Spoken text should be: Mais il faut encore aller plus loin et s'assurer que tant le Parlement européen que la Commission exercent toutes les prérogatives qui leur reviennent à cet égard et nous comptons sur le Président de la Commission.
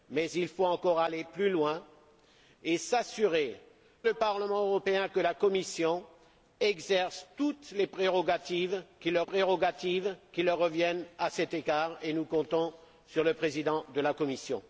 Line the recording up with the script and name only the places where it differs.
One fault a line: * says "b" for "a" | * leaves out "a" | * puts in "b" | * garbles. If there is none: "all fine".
* leaves out "que tant"
* puts in "prérogatives qui leur"